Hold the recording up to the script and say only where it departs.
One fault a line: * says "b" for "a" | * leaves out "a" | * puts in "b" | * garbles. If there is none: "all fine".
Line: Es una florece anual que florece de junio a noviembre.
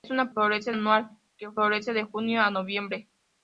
all fine